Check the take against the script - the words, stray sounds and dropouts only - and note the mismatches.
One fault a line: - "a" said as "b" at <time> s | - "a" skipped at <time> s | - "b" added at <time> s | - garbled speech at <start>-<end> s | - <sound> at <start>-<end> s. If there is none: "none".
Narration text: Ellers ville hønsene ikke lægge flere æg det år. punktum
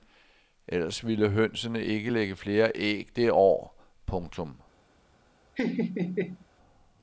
- laugh at 5.5-6.5 s